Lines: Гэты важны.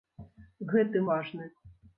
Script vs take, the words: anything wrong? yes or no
no